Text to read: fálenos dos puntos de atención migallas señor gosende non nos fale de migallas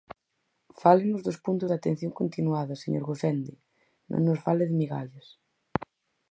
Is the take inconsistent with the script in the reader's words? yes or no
yes